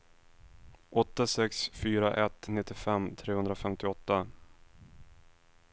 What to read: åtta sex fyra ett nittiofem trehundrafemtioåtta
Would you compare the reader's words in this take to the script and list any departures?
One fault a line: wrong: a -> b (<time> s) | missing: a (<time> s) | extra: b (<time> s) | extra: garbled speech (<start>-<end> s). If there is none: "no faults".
no faults